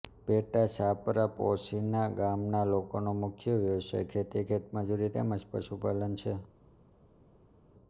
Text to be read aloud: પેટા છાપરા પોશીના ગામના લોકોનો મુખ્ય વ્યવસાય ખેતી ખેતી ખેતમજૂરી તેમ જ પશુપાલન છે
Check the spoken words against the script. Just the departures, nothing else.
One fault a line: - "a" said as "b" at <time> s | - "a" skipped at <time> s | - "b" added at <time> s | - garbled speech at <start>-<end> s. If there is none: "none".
- "ખેતી" skipped at 4.5 s